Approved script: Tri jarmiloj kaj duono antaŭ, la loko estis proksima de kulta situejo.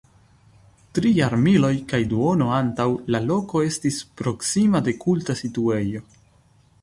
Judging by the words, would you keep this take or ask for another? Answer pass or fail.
pass